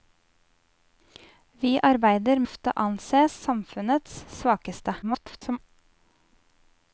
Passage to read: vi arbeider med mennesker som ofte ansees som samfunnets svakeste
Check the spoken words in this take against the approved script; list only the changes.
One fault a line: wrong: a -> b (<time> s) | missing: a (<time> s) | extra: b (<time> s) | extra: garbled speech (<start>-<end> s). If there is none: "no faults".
missing: med mennesker som (2.4 s)
missing: som (3.3 s)
extra: garbled speech (5.0-5.6 s)